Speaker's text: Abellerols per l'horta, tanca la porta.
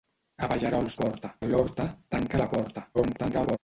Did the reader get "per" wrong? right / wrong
wrong